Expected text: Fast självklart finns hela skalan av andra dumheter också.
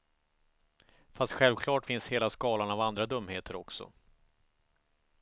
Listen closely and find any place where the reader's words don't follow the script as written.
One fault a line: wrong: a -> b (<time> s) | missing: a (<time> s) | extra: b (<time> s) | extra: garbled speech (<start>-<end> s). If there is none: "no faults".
no faults